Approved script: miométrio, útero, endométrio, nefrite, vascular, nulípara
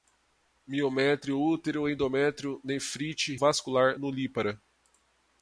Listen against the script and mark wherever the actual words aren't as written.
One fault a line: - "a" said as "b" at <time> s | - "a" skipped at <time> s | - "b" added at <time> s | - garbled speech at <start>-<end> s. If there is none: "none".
none